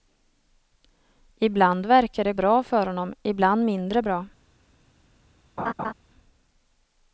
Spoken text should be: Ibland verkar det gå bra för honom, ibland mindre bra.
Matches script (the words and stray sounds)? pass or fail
fail